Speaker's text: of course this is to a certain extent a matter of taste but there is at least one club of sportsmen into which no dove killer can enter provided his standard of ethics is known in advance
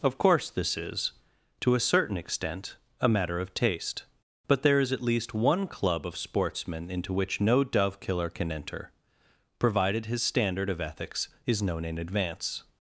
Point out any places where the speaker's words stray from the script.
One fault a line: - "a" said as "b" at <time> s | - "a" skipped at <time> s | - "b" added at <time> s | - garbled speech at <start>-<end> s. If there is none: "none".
none